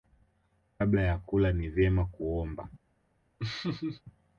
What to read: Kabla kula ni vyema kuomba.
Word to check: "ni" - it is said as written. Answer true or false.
true